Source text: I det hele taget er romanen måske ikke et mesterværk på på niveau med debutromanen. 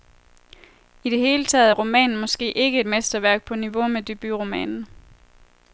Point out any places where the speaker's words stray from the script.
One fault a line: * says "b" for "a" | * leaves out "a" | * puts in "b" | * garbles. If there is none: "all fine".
* leaves out "på"